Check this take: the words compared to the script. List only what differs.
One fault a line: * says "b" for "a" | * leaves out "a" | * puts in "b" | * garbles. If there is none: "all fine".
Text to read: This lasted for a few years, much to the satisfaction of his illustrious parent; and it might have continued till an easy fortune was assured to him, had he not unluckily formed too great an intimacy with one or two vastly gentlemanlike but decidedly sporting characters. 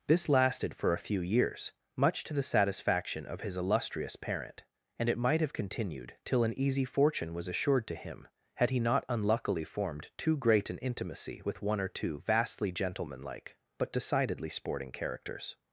all fine